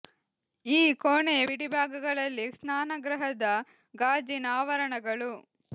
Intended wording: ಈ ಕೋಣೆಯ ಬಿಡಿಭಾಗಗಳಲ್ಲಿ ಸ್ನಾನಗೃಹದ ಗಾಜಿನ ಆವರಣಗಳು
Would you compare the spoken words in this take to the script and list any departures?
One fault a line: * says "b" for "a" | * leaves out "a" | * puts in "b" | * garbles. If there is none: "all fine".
all fine